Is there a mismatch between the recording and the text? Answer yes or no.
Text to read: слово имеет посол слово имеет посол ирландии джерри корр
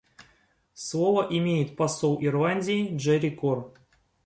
yes